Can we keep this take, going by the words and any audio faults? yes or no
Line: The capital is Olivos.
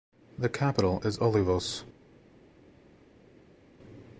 yes